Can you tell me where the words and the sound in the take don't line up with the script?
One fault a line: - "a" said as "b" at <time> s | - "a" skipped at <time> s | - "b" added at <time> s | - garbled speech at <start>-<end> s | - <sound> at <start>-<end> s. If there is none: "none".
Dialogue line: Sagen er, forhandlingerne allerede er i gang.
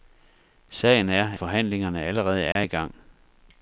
- dropout at 2.5-2.6 s